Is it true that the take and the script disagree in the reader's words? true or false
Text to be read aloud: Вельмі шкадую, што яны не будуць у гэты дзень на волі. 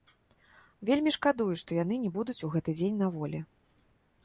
false